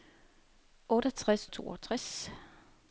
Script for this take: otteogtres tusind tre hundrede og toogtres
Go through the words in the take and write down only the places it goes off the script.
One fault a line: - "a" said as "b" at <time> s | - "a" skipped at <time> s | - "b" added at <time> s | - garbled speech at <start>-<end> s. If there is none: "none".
- "tusind tre hundrede" skipped at 1.5 s